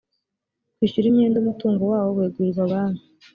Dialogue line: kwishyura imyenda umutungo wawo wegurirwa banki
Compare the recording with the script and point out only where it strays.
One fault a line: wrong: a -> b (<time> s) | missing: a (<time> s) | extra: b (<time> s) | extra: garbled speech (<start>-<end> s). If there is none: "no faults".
no faults